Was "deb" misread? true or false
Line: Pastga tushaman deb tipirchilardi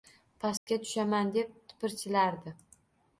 false